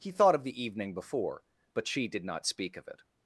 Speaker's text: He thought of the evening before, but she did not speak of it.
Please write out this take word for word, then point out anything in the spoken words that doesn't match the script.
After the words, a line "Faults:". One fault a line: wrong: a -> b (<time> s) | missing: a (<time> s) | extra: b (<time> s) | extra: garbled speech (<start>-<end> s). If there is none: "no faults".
He thought of the evening before, but she did not speak of it.
Faults:
no faults